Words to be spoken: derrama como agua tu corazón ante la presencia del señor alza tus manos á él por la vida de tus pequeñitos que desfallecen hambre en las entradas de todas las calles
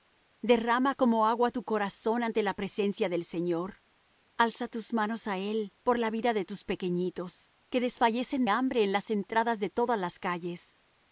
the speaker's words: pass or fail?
pass